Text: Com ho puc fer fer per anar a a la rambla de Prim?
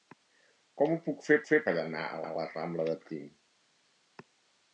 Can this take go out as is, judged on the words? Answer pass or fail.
pass